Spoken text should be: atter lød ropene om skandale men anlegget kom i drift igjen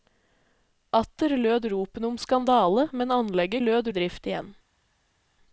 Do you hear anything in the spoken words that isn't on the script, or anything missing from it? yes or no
yes